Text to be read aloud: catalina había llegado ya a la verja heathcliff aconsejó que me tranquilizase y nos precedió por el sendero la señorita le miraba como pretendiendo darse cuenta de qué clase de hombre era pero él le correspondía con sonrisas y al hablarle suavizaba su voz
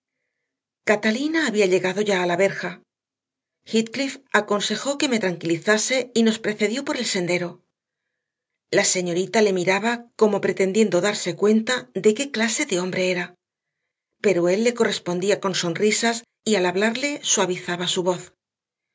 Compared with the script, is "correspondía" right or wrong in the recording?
right